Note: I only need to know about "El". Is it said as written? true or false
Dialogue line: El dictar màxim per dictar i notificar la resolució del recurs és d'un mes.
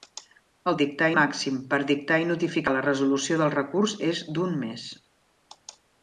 true